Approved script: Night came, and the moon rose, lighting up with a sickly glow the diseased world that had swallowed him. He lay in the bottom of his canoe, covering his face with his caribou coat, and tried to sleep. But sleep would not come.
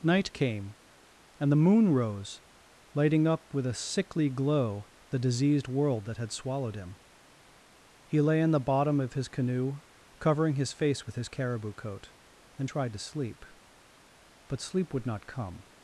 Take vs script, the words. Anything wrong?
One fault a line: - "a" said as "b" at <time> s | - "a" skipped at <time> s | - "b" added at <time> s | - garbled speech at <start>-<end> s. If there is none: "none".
none